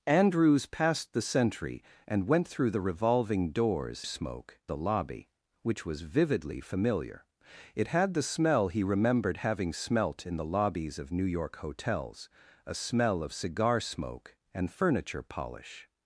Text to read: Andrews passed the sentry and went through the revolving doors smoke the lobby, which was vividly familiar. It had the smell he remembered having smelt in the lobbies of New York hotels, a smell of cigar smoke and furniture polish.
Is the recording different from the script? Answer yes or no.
no